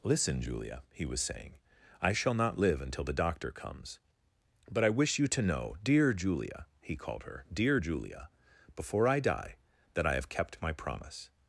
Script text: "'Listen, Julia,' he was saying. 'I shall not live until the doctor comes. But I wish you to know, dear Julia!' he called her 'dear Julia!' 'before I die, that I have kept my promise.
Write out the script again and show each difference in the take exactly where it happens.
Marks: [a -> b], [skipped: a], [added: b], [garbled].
"'Listen, Julia,' he was saying. 'I shall not live until the doctor comes. But I wish you to know, dear Julia!' he called her 'dear Julia!' 'before I die, that I have kept my promise.